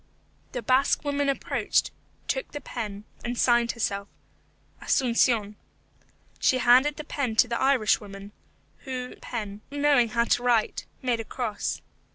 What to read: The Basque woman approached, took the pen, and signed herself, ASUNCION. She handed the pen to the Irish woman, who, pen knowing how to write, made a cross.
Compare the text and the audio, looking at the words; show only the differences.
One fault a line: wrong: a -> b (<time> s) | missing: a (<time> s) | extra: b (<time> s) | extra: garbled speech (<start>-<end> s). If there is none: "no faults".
no faults